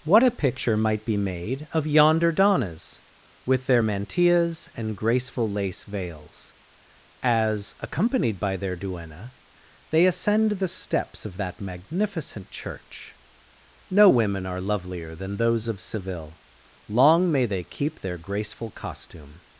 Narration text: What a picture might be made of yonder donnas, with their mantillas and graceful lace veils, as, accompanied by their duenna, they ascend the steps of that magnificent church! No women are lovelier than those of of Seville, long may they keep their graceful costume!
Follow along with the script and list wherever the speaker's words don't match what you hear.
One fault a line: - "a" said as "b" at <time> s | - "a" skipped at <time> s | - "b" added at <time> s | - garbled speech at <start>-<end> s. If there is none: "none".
- "of" skipped at 15.8 s